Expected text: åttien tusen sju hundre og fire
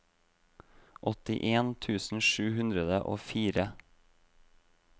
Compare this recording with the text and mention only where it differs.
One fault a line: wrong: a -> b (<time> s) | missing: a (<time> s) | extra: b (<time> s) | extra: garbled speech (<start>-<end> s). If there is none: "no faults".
no faults